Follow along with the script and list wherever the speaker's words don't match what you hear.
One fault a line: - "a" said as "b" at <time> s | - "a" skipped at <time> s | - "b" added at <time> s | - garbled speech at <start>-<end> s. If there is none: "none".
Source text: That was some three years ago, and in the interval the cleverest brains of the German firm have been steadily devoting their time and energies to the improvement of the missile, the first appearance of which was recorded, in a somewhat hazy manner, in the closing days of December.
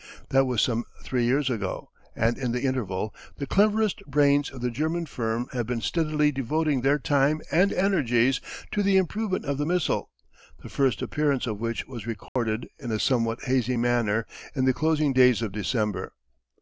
none